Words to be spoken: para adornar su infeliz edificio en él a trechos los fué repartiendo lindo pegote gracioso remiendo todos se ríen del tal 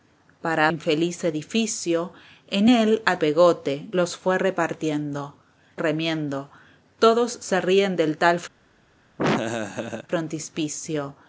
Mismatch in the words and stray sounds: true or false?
true